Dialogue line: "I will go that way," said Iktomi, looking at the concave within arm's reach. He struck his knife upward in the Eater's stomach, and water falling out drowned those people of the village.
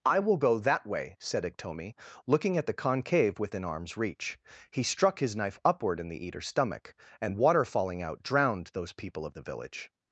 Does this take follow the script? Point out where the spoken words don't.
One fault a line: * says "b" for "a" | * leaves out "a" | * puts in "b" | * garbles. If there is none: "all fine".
all fine